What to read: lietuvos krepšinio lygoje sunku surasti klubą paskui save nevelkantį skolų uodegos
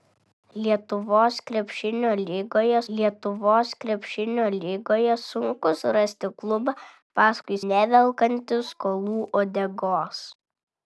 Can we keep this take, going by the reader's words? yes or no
no